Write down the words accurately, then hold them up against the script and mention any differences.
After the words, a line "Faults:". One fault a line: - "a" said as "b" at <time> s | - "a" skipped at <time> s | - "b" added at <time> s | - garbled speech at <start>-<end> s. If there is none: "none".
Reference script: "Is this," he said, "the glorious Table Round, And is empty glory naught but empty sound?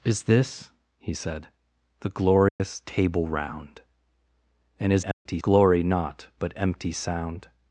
"Is this," he said, "the glorious Table Round, And is empty glory naught but empty sound?
Faults:
none